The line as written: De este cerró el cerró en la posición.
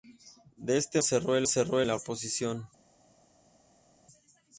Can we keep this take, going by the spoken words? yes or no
yes